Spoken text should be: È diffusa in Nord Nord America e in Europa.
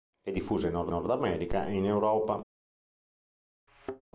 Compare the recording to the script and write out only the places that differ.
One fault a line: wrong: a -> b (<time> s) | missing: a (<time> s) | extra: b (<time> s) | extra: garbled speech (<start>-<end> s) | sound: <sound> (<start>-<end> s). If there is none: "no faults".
sound: thud (3.7-4.0 s)